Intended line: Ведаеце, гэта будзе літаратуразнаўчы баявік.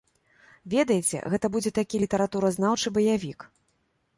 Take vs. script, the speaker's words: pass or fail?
fail